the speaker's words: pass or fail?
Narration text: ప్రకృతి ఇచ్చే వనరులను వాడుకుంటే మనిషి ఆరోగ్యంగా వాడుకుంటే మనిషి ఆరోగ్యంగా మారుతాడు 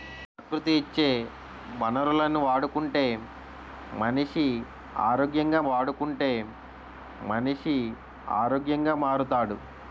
pass